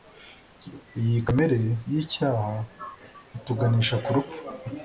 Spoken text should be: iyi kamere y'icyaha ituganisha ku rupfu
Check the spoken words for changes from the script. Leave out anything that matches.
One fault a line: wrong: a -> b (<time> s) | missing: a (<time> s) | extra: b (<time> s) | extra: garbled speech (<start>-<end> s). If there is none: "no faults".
no faults